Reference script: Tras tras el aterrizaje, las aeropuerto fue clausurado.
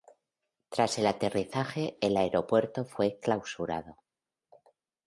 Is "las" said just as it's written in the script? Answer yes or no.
no